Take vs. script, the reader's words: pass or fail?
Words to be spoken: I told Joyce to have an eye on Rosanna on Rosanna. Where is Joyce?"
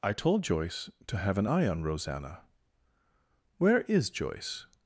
fail